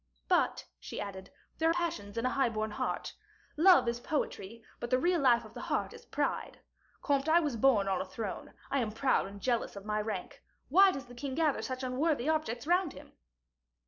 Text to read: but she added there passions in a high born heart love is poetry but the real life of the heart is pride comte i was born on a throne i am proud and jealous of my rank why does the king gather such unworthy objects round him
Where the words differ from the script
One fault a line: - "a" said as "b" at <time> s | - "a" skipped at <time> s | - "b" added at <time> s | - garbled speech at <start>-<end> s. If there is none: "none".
none